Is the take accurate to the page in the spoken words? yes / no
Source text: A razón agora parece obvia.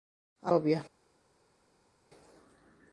no